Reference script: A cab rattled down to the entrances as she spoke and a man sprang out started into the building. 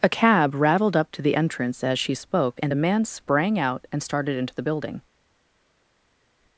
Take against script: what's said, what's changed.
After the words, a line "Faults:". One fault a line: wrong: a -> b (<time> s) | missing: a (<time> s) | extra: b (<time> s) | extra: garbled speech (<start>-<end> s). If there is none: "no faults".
A cab rattled up to the entrance as she spoke and a man sprang out and started into the building.
Faults:
wrong: down -> up (0.9 s)
wrong: entrances -> entrance (1.4 s)
extra: and (3.9 s)